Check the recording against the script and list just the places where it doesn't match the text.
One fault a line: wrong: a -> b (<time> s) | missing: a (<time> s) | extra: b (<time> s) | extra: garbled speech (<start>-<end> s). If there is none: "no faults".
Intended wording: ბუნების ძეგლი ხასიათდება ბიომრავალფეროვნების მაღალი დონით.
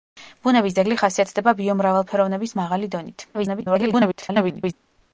extra: garbled speech (3.3-4.7 s)